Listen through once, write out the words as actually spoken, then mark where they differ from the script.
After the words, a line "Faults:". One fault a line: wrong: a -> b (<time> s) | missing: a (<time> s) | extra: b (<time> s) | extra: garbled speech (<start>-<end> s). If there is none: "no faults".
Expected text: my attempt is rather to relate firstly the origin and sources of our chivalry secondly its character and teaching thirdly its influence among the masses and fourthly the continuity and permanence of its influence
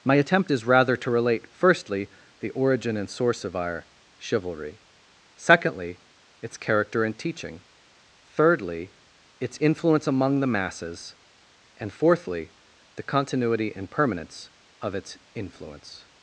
my attempt is rather to relate firstly the origin and source of our chivalry secondly its character and teaching thirdly its influence among the masses and fourthly the continuity and permanence of its influence
Faults:
wrong: sources -> source (3.1 s)